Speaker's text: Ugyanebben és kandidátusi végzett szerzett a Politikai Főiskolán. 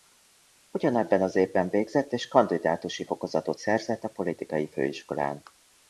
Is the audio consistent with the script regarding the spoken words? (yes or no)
no